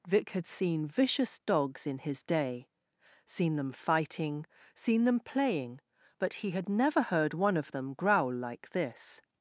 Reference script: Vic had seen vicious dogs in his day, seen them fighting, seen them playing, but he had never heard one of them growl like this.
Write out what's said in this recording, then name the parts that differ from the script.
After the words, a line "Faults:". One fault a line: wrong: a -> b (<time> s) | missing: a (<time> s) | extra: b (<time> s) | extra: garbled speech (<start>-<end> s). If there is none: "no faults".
Vic had seen vicious dogs in his day, seen them fighting, seen them playing, but he had never heard one of them growl like this.
Faults:
no faults